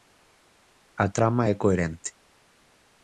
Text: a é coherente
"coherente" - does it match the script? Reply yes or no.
yes